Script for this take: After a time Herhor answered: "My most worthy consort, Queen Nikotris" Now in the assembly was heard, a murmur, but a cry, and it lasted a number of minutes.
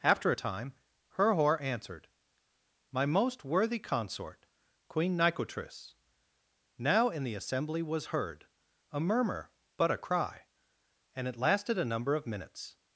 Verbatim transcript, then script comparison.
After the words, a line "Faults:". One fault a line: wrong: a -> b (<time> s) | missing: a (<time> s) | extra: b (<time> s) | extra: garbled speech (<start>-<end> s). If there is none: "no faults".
After a time Herhor answered: "My most worthy consort, Queen Nikotris" Now in the assembly was heard, a murmur, but a cry, and it lasted a number of minutes.
Faults:
no faults